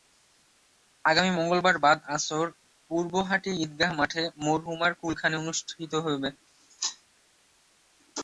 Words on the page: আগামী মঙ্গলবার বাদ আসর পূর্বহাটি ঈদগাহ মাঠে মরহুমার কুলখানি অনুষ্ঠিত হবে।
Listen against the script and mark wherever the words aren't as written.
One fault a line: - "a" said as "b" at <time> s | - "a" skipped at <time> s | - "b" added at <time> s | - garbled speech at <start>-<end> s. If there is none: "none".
none